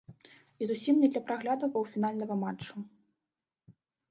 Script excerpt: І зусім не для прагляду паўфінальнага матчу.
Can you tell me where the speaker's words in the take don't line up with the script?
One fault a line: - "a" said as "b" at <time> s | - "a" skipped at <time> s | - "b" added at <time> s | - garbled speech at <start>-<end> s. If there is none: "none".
none